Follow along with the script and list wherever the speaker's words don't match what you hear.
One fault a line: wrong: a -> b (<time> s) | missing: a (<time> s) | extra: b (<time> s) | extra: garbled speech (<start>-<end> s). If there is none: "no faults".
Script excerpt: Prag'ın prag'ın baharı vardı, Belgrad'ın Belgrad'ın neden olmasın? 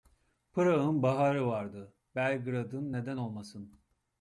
missing: prag'ın (1.0 s)
missing: Belgrad'ın (2.9 s)